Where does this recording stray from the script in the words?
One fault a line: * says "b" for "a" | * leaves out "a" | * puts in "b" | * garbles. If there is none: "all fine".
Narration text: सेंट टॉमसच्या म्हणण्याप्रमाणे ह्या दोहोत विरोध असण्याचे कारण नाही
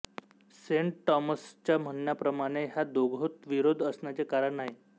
all fine